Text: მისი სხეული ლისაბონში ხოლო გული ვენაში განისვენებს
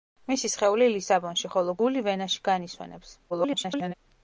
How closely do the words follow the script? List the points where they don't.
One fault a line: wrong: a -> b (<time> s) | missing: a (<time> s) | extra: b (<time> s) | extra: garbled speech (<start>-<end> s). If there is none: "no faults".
extra: garbled speech (3.3-3.9 s)